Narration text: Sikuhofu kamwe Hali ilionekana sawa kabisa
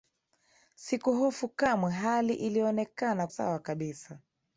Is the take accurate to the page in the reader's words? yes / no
yes